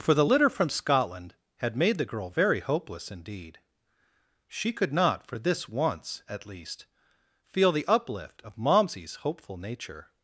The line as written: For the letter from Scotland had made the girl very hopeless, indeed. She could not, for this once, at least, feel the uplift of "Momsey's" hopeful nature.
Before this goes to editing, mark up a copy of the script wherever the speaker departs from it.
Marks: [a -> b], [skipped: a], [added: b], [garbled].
For the [letter -> litter] from Scotland had made the girl very hopeless, indeed. She could not, for this once, at least, feel the uplift of "Momsey's" hopeful nature.